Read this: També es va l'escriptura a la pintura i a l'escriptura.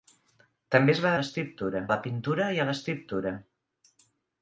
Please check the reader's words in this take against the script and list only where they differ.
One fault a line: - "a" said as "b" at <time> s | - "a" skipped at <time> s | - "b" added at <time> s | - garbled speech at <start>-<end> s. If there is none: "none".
none